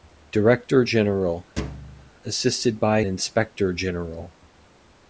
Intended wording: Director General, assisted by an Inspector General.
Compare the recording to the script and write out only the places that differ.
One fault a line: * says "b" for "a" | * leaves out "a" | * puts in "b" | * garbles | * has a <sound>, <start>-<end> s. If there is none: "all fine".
* has a thud, 1.6-2.1 s
* leaves out "an"